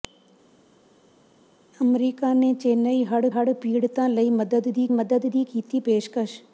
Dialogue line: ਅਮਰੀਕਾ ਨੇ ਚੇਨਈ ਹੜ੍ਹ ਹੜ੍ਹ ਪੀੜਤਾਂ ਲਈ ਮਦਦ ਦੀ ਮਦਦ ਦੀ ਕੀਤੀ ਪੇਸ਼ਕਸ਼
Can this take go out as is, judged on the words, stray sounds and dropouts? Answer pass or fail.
pass